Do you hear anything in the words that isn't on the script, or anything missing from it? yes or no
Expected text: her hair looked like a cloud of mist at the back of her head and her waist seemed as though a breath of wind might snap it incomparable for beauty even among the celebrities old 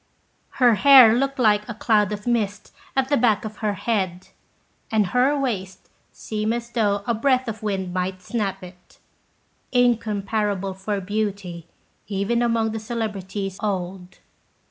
no